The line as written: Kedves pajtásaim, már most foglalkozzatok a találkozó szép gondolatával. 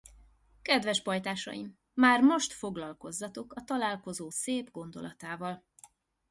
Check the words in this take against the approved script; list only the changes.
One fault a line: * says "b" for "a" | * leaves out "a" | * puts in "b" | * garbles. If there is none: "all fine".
all fine